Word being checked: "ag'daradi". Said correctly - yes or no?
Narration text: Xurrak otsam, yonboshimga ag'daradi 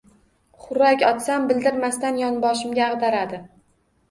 yes